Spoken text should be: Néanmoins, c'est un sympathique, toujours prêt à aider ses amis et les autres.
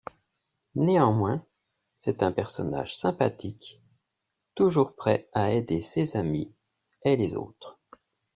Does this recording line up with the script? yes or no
no